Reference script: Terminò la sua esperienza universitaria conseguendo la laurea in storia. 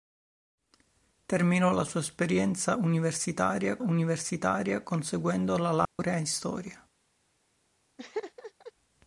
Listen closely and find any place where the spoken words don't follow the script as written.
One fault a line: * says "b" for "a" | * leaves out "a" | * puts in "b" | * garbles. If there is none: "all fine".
* puts in "universitaria"